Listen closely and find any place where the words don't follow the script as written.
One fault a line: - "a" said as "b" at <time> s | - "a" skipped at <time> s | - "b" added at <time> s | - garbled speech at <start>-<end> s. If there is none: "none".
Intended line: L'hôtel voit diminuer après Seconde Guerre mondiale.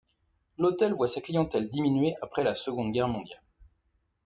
- "sa clientèle" added at 1.1 s
- "la" added at 2.4 s